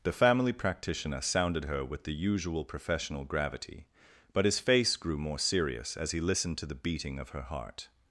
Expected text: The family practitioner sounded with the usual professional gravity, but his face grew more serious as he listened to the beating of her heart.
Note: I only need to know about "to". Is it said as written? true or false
true